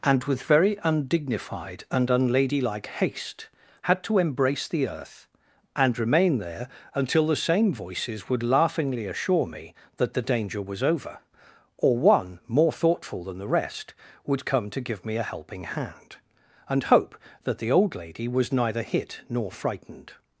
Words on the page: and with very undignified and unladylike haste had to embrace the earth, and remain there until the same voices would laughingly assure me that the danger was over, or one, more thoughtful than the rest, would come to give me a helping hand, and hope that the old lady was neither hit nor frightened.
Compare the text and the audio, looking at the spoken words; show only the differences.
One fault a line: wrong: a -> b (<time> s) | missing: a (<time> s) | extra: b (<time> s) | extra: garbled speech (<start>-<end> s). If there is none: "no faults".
no faults